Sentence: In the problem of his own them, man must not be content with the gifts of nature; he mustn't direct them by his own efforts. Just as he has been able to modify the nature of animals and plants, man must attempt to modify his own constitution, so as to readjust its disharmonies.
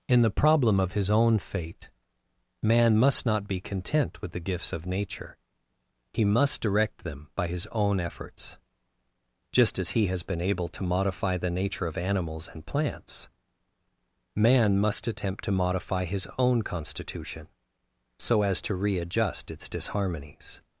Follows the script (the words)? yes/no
no